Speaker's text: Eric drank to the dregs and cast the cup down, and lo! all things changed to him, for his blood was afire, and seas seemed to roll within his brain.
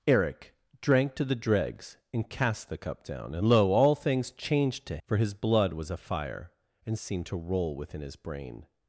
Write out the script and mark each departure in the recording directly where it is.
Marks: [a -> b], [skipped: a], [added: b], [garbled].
Eric drank to the dregs and cast the cup down, and lo! all things changed to [skipped: him,] for his blood was afire, and [skipped: seas] seemed to roll within his brain.